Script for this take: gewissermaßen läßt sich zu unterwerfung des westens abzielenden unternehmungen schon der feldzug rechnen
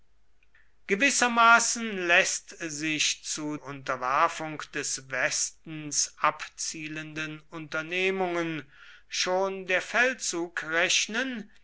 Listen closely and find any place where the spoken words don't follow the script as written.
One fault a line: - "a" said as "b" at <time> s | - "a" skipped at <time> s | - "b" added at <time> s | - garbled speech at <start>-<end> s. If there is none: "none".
none